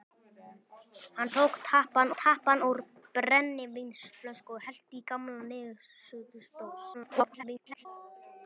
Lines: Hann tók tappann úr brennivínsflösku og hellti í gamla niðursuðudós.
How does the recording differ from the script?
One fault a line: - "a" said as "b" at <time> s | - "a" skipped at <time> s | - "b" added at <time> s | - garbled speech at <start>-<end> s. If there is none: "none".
- "tappann" added at 2.2 s
- garbled speech at 6.9-7.9 s